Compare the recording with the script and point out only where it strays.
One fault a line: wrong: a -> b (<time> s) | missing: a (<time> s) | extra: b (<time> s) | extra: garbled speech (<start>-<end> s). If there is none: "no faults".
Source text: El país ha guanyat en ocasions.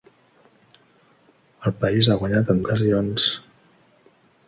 no faults